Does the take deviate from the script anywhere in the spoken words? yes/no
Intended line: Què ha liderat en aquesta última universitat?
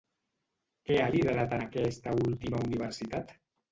no